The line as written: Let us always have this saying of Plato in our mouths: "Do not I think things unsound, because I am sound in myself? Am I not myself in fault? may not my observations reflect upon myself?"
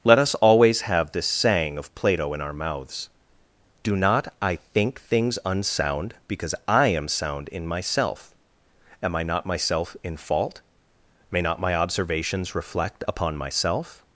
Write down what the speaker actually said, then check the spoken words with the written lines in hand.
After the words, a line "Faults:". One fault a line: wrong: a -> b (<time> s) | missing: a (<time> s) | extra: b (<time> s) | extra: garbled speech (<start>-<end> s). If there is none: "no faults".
Let us always have this saying of Plato in our mouths: "Do not I think things unsound, because I am sound in myself? Am I not myself in fault? may not my observations reflect upon myself?"
Faults:
no faults